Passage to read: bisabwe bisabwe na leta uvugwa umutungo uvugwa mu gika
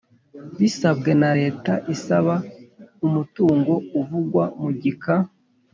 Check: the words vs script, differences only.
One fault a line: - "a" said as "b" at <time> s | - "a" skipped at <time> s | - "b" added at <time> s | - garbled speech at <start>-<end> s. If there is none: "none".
- "bisabwe" skipped at 1.1 s
- "uvugwa" said as "isaba" at 1.9 s